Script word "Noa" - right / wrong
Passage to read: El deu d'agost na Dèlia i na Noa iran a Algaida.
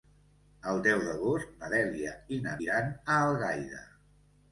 wrong